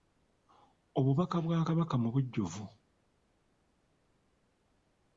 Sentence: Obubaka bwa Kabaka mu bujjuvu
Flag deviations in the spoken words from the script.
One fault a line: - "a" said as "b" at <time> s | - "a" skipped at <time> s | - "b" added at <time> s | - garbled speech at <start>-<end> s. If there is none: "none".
none